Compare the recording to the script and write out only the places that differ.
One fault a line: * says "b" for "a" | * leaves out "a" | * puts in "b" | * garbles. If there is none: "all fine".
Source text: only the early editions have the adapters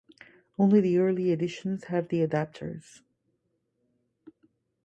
all fine